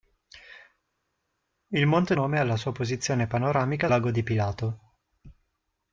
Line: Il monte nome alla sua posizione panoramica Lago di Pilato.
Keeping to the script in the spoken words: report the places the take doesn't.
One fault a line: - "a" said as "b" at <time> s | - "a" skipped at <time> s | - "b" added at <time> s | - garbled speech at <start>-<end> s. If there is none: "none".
none